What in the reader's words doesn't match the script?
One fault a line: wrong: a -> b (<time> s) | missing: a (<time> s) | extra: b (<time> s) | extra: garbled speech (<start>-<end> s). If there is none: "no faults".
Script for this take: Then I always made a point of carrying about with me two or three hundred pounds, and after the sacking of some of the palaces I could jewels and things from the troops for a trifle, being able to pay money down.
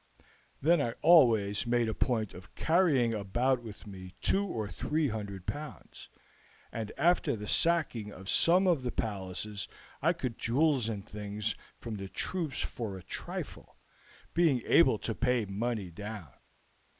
no faults